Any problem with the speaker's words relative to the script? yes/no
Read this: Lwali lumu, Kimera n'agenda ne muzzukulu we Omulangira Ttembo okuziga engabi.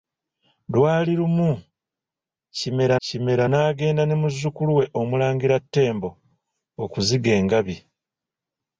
yes